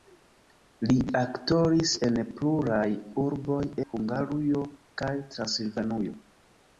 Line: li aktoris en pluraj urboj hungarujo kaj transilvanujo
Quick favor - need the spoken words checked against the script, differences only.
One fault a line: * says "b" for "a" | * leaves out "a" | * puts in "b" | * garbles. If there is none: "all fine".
all fine